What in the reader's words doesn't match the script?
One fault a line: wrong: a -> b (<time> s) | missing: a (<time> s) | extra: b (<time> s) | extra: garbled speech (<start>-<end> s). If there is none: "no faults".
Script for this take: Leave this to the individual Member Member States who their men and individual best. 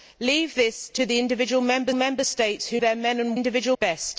no faults